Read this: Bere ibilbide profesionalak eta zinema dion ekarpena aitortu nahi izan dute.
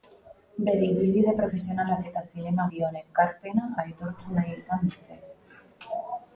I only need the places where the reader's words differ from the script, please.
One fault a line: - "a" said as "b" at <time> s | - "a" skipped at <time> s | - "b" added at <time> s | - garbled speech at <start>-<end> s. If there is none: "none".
none